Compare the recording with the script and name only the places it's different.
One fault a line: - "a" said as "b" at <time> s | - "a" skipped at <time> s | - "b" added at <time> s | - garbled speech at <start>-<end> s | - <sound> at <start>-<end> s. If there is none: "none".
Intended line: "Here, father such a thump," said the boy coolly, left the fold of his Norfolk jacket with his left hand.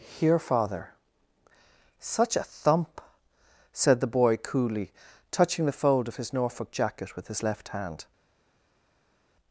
- "left" said as "touching" at 5.3 s